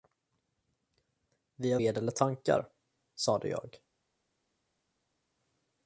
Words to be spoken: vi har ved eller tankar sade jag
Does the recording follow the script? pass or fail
pass